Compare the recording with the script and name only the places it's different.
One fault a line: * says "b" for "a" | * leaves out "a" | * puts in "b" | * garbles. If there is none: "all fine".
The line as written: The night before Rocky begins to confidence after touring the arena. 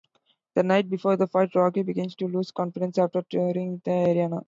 * puts in "the fight"
* puts in "lose"